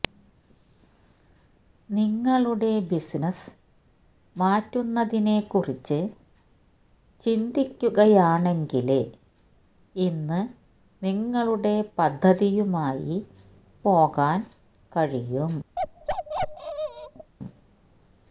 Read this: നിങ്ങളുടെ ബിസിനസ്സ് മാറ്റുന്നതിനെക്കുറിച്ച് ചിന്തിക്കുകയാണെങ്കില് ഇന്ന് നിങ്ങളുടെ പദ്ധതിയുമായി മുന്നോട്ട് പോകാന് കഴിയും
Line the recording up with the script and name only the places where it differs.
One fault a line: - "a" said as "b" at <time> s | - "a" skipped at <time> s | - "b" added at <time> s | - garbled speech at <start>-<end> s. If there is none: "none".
- "മുന്നോട്ട്" skipped at 13.2 s